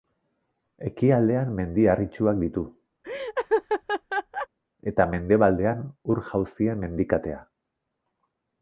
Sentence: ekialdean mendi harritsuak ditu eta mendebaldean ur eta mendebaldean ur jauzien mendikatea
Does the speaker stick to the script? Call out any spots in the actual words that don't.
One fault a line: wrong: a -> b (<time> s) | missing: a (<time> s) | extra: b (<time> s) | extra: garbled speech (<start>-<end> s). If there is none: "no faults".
missing: eta mendebaldean ur (6.2 s)